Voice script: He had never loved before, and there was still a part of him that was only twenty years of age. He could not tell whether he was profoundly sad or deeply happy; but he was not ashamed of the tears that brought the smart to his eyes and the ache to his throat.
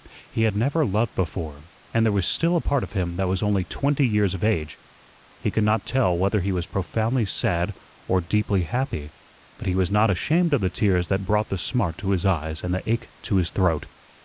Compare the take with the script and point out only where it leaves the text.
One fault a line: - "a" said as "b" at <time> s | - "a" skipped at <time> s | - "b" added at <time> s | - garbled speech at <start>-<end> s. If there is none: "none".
none